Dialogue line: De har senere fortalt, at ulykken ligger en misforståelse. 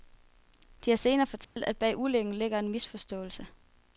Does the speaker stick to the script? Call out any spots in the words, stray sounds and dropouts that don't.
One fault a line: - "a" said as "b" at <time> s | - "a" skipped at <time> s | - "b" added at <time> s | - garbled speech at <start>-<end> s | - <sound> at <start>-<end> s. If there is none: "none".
- dropout at 1.4-1.6 s
- "bag" added at 1.8 s